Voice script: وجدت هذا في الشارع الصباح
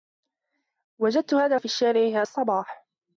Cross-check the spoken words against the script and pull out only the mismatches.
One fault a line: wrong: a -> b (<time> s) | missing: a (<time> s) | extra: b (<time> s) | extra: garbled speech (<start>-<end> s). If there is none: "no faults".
no faults